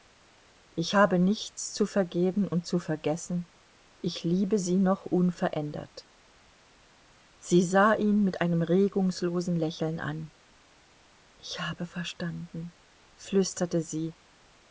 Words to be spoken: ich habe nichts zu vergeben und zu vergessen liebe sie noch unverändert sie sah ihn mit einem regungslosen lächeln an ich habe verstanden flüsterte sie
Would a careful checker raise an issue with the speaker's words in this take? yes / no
yes